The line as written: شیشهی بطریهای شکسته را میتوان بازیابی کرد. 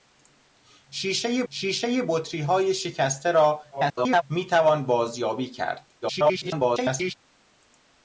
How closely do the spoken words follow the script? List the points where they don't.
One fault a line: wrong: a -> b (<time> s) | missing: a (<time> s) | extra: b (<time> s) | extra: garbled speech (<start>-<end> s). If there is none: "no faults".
extra: شیشهی (1.5 s)
extra: garbled speech (3.7-4.2 s)
extra: garbled speech (6.0-7.1 s)